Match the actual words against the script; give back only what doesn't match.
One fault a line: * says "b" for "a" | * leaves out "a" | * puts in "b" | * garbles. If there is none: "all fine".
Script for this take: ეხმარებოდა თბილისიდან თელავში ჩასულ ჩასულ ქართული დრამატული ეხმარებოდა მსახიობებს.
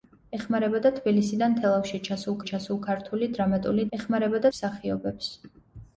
all fine